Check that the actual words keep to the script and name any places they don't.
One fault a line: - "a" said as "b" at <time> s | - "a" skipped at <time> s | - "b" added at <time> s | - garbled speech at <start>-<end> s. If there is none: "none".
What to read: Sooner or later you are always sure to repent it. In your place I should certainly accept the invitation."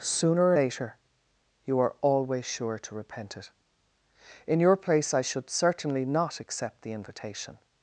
- "not" added at 6.0 s